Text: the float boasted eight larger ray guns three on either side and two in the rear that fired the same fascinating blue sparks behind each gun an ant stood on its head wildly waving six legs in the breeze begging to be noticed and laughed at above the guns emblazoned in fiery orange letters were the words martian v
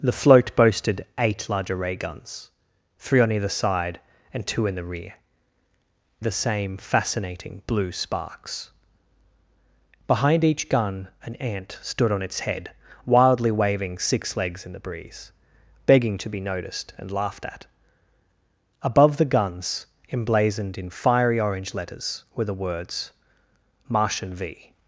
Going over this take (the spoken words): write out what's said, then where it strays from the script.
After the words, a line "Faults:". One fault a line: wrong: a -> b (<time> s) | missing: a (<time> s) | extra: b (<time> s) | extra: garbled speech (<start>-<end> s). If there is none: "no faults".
the float boasted eight larger ray guns three on either side and two in the rear the same fascinating blue sparks behind each gun an ant stood on its head wildly waving six legs in the breeze begging to be noticed and laughed at above the guns emblazoned in fiery orange letters were the words martian v
Faults:
missing: that fired (5.1 s)